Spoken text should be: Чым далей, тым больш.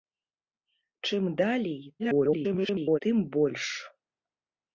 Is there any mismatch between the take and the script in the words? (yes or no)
yes